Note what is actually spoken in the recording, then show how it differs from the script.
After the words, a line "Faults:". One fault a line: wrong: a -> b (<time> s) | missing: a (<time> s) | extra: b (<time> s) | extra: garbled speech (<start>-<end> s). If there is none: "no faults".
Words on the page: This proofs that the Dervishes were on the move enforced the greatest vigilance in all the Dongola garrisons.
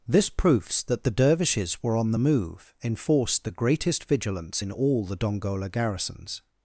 This proofs that the Dervishes were on the move enforced the greatest vigilance in all the Dongola garrisons.
Faults:
no faults